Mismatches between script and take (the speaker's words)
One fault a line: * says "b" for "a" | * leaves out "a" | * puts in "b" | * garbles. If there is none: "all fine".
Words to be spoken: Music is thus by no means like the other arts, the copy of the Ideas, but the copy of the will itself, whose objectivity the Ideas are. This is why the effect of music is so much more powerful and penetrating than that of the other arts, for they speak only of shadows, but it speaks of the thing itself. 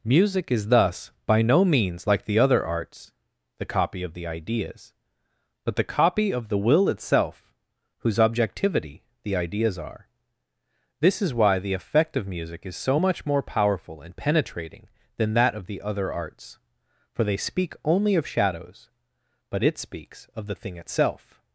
all fine